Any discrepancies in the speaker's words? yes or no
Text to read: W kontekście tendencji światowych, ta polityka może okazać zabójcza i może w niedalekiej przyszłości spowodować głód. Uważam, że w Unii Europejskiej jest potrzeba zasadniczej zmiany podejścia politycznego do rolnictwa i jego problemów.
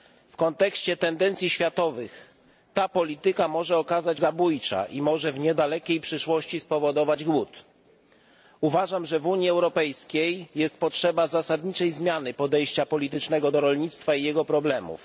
no